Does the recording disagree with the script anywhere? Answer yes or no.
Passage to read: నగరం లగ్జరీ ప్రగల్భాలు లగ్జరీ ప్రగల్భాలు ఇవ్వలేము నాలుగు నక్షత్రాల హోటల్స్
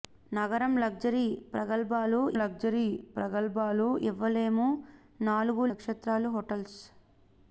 no